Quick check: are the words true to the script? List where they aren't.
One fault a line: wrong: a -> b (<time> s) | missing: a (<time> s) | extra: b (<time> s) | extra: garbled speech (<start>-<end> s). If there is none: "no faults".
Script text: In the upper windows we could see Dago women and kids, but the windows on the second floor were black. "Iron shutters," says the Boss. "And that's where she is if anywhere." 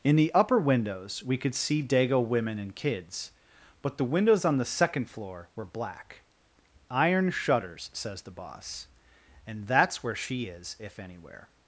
no faults